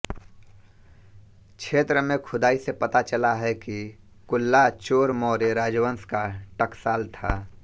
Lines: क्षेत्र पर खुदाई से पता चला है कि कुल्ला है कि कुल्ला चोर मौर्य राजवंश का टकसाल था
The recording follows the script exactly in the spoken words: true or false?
false